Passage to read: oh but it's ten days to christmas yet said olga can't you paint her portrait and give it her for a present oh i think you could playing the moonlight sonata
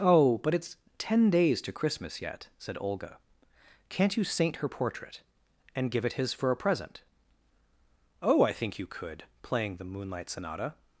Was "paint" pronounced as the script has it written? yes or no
no